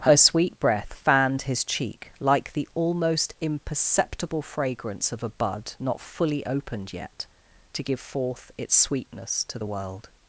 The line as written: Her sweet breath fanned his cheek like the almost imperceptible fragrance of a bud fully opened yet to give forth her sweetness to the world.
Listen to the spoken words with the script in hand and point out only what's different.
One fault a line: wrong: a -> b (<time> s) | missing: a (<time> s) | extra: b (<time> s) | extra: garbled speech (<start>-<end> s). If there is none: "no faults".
extra: not (5.8 s)
wrong: her -> its (8.6 s)